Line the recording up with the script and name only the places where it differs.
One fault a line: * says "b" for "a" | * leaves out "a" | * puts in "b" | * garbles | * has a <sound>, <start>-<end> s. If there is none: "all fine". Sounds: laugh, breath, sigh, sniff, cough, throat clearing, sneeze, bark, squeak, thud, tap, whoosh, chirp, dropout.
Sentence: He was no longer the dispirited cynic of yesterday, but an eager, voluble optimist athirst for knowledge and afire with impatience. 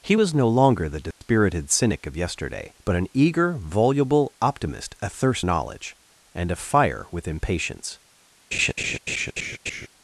* has a dropout, 1.1-1.2 s
* leaves out "for"
* has a laugh, 8.5-9.9 s